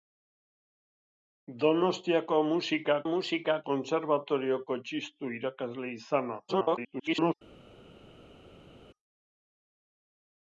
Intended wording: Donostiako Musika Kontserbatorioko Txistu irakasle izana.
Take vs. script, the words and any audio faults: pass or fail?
fail